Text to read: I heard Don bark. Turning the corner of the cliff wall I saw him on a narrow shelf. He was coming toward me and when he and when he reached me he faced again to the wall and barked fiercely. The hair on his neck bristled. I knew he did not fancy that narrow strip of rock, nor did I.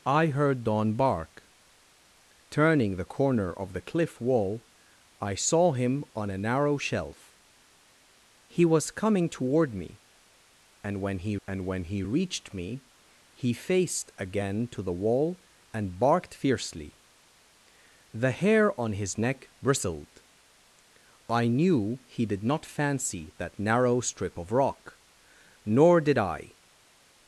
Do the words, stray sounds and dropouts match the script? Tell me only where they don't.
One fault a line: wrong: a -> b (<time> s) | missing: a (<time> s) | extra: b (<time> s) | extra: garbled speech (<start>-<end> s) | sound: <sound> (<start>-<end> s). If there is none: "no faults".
no faults